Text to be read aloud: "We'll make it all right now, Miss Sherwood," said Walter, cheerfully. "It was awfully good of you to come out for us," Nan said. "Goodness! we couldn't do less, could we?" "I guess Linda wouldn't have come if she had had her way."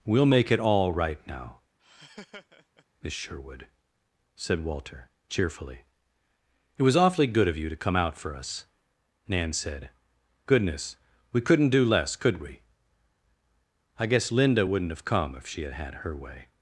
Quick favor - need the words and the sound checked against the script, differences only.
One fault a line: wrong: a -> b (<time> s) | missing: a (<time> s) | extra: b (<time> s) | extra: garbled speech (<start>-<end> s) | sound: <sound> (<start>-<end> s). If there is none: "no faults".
sound: laugh (1.8-2.9 s)